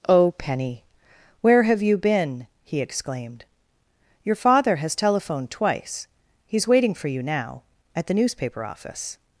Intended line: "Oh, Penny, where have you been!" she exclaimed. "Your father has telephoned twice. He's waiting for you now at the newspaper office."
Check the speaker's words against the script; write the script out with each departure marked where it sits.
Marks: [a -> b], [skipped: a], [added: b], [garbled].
"Oh, Penny, where have you been!" [she -> he] exclaimed. "Your father has telephoned twice. He's waiting for you now at the newspaper office."